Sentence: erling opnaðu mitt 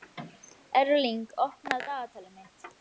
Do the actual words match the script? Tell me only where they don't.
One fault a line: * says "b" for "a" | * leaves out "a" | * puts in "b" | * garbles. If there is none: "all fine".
* puts in "dagatalið"